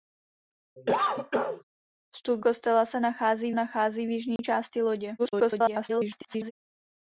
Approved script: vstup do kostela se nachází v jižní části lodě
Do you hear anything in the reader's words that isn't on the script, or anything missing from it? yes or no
yes